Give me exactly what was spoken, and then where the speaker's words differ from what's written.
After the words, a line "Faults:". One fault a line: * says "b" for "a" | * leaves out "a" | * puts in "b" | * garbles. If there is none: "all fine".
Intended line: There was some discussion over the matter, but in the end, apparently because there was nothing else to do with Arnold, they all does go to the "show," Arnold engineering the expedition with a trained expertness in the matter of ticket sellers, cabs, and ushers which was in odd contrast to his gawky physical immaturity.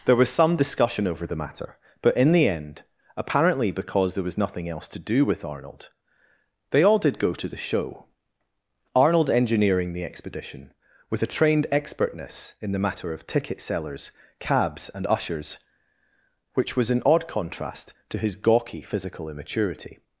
There was some discussion over the matter, but in the end, apparently because there was nothing else to do with Arnold, they all did go to the "show," Arnold engineering the expedition with a trained expertness in the matter of ticket sellers, cabs, and ushers which was in odd contrast to his gawky physical immaturity.
Faults:
* says "did" for "does"